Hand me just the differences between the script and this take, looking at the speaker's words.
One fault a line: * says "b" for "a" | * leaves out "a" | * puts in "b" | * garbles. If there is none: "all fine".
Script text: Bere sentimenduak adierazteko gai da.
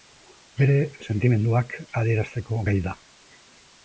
all fine